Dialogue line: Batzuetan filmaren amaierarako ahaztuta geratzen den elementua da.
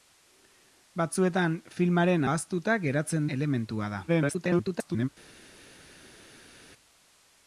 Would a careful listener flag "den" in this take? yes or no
yes